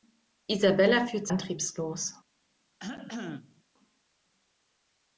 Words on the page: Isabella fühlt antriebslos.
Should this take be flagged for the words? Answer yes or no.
no